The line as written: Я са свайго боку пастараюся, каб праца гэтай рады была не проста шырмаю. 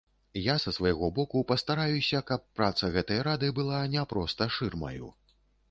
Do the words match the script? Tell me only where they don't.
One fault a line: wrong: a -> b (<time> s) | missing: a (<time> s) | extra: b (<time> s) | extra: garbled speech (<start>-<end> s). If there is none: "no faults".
no faults